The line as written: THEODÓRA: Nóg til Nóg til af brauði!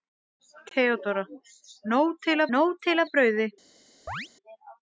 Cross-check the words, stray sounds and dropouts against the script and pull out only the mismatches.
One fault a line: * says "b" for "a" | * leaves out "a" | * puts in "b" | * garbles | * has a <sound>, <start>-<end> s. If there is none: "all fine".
* has a chirp, 4.1-4.3 s